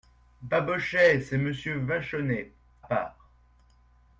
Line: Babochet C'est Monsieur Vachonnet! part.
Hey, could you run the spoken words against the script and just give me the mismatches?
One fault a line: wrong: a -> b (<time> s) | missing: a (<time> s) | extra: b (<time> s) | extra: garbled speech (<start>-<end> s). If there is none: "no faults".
no faults